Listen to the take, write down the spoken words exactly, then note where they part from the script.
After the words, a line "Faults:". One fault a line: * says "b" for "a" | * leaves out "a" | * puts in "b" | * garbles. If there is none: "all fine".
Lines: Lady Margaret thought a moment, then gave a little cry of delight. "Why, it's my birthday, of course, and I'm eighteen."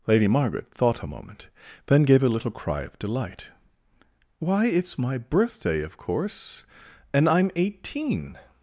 Lady Margaret thought a moment, then gave a little cry of delight. "Why, it's my birthday, of course, and I'm eighteen."
Faults:
all fine